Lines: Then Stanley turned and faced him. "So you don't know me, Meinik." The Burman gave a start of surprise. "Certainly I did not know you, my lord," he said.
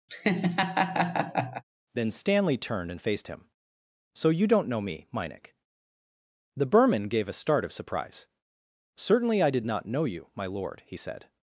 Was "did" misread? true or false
false